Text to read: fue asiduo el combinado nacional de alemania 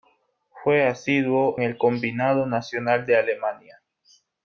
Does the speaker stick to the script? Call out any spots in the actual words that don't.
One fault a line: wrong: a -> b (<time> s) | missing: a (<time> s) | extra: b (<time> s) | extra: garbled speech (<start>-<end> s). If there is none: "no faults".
no faults